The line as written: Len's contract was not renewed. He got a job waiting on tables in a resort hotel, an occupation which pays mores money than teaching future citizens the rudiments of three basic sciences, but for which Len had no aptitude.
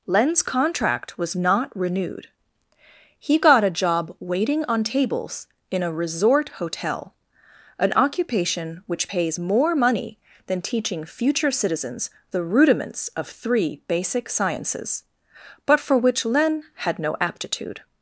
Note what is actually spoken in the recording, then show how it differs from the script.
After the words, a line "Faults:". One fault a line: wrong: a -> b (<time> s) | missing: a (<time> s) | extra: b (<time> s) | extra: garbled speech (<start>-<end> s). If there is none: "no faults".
Len's contract was not renewed. He got a job waiting on tables in a resort hotel, an occupation which pays more money than teaching future citizens the rudiments of three basic sciences, but for which Len had no aptitude.
Faults:
wrong: mores -> more (9.4 s)